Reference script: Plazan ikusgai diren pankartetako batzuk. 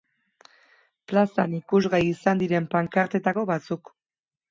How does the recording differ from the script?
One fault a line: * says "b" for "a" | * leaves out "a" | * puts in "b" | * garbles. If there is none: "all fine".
* puts in "izan"